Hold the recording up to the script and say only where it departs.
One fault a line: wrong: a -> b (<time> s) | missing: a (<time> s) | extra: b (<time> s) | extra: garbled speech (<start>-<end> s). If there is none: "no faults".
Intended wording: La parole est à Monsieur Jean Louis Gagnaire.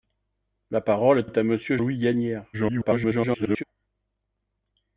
extra: est (1.2 s)
missing: Jean (1.8 s)
extra: garbled speech (2.5-3.6 s)